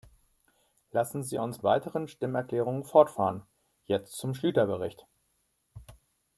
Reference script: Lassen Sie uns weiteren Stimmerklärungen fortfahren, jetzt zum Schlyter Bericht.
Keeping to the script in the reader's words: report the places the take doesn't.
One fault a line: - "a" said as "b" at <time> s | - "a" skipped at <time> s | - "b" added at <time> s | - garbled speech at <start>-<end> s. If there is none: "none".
none